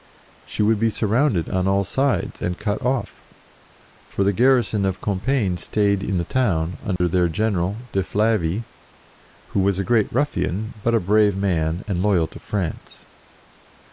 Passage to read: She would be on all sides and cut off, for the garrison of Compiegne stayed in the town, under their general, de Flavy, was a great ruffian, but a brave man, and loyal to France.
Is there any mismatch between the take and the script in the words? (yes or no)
yes